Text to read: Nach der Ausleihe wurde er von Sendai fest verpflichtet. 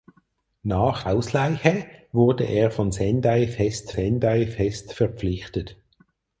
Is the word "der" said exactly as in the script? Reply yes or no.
no